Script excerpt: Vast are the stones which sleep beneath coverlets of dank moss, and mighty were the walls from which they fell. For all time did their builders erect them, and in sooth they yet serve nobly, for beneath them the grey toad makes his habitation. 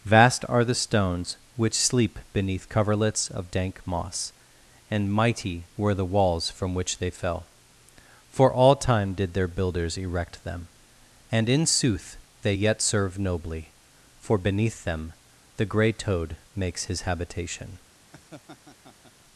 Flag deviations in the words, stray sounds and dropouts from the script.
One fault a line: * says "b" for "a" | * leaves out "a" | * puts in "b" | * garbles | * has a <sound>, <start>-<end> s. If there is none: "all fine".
* has a laugh, 18.1-19.1 s